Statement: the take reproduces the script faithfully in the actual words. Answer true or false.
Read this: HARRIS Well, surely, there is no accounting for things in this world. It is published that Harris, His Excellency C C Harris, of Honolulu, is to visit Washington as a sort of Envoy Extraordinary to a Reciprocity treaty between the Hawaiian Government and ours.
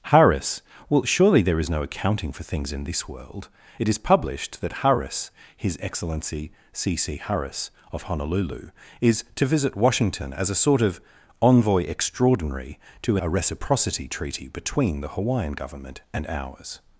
true